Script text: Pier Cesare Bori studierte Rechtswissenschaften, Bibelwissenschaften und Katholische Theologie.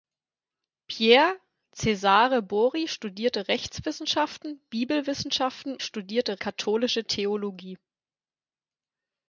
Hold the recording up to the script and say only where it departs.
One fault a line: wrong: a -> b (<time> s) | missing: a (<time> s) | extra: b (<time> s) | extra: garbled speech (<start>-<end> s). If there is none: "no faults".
wrong: und -> studierte (5.8 s)